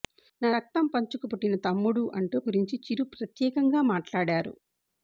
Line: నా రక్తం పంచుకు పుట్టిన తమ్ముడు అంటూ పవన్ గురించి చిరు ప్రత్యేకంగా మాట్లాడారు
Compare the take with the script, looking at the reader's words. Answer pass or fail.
fail